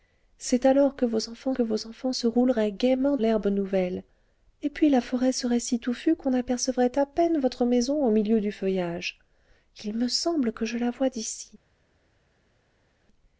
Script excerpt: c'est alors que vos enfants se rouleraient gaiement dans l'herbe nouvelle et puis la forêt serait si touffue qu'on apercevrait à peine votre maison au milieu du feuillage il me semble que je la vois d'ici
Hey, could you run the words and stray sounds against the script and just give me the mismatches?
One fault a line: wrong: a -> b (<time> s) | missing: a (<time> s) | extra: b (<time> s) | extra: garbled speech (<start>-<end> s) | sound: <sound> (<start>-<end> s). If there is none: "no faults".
extra: que vos enfants (1.5 s)
missing: dans (3.2 s)